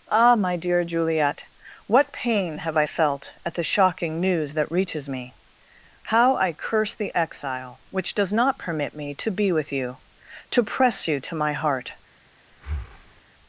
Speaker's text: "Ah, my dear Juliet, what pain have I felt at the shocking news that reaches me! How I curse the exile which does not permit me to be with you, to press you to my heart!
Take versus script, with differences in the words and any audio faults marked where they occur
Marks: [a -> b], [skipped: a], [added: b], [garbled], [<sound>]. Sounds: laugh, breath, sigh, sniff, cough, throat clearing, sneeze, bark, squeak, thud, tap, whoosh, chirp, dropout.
"Ah, my dear Juliet, what pain have I felt at the shocking news that reaches me! How I curse the exile which does not permit me to be with you, to press you to my heart! [breath]